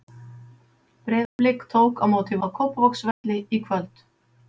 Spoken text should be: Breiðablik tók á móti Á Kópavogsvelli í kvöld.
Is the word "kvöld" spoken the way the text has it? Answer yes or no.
yes